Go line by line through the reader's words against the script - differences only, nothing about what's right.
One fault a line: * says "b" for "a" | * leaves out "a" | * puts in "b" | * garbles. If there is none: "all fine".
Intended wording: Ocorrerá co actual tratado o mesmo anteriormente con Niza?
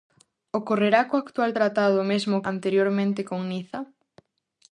all fine